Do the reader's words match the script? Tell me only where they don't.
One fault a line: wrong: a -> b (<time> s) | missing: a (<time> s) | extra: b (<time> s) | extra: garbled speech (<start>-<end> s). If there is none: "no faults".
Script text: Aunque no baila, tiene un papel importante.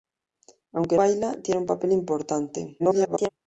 missing: no (1.0 s)
extra: garbled speech (2.8-3.3 s)